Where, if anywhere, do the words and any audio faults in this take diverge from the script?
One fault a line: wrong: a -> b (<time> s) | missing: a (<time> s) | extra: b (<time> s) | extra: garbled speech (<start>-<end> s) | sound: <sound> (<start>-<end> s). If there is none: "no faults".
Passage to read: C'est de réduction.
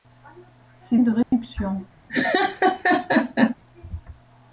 sound: dropout (1.2-1.3 s)
sound: laugh (2.1-3.6 s)